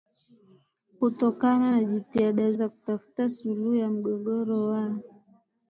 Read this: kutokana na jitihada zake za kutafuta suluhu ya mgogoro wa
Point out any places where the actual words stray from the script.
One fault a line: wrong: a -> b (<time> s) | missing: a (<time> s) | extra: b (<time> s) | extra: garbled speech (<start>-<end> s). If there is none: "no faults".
missing: zake (2.5 s)